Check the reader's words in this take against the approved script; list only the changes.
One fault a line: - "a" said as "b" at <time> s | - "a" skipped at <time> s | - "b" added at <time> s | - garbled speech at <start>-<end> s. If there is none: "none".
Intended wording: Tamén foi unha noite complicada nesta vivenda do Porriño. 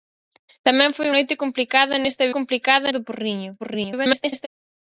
- "unha" skipped at 1.1 s
- "vivenda" said as "complicada" at 2.4 s
- garbled speech at 3.6-4.5 s